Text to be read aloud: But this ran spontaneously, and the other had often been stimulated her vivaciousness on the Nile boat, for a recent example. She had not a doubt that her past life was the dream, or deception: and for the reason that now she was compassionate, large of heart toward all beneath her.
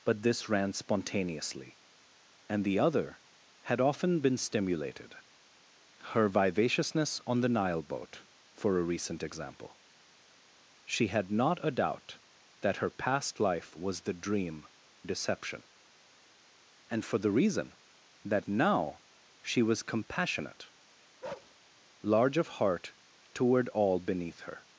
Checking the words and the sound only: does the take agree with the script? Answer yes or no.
no